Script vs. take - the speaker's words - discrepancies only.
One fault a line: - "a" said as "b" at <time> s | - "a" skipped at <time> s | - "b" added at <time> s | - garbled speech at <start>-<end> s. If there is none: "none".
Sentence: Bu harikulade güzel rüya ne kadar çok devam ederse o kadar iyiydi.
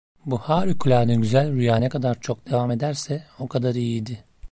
none